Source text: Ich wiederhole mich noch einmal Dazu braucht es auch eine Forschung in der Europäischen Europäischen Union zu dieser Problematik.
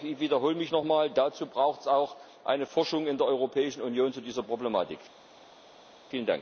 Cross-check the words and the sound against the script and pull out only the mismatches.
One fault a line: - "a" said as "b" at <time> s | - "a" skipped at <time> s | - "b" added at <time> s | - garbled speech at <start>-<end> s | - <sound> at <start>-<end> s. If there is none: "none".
- "Europäischen" skipped at 3.8 s